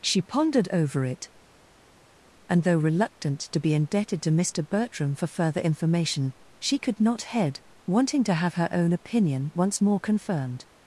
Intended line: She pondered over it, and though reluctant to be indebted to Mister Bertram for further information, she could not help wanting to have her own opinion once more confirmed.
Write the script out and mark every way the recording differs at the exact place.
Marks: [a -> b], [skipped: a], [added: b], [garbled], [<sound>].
She pondered over it, and though reluctant to be indebted to Mister Bertram for further information, she could not [help -> head] wanting to have her own opinion once more confirmed.